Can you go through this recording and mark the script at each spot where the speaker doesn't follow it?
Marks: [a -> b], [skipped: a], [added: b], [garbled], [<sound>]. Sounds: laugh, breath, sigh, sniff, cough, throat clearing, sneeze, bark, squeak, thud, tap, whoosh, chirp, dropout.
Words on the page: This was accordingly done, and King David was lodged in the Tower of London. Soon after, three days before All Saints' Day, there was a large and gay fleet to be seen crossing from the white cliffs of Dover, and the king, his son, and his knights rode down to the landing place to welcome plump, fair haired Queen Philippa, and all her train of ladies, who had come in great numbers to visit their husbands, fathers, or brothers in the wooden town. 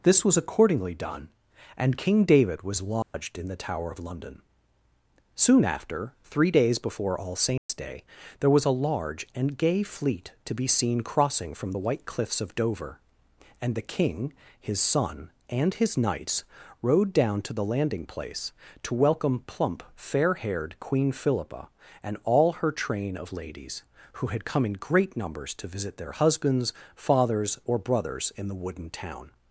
This was accordingly done, and King David was lodged [dropout] in the Tower of London. Soon after, three days before All Saints' [dropout] Day, there was a large and gay fleet to be seen crossing from the white cliffs of Dover, and the king, his son, and his knights rode down to the landing place to welcome plump, fair haired Queen Philippa, and all her train of ladies, who had come in great numbers to visit their husbands, fathers, or brothers in the wooden town.